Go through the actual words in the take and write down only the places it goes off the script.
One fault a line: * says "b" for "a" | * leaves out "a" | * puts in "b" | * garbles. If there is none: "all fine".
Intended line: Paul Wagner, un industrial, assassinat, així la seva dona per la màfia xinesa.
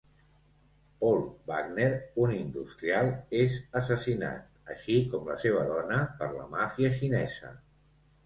* puts in "és"
* puts in "com"